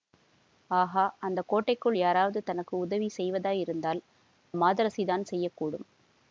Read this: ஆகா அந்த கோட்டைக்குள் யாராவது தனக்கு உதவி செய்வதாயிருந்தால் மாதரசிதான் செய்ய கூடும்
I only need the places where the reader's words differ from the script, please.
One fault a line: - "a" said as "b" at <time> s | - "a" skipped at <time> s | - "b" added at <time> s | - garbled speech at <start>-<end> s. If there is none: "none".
none